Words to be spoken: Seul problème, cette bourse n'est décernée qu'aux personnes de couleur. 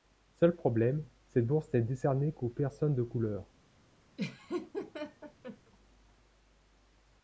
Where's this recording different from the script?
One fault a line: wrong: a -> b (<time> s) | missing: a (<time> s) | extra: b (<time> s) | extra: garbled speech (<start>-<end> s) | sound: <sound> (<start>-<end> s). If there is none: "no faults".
sound: laugh (4.2-5.7 s)